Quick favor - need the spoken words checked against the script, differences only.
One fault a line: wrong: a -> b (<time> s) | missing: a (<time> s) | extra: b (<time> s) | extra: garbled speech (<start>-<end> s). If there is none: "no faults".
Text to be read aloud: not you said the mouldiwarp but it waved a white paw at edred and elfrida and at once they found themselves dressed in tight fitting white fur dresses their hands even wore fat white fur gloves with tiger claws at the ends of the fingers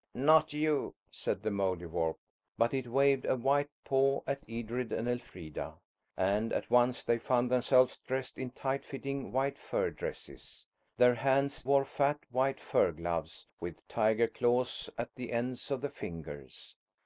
missing: even (11.7 s)